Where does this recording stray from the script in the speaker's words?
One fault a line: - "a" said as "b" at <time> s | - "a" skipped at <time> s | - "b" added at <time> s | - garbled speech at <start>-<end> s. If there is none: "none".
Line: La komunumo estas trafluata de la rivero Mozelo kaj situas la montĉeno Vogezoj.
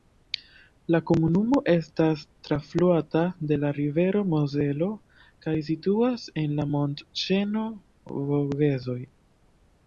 - "en" added at 6.4 s